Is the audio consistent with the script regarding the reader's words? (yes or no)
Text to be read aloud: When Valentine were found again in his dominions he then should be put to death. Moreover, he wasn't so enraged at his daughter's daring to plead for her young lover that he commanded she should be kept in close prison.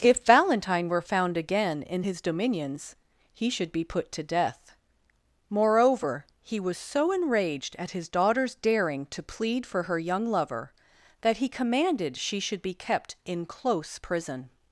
no